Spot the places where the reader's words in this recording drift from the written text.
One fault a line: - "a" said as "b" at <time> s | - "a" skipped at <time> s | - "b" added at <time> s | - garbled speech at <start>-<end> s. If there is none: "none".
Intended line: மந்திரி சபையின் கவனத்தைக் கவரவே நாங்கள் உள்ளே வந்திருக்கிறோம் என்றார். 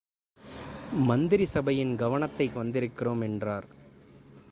- "கவரவே நாங்கள் உள்ளே" skipped at 2.5 s